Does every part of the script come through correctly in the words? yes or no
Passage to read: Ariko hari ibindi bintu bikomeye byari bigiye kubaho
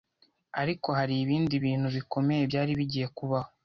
yes